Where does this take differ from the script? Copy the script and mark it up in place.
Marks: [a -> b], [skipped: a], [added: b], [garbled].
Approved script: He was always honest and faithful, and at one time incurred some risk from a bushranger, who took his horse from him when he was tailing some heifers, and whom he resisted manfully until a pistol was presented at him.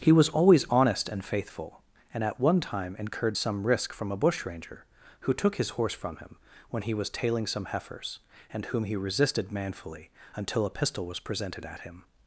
He was always honest and faithful, and at one time incurred some risk from a bushranger, who took his horse from him when he was tailing some heifers, and whom he resisted manfully until a pistol was presented at him.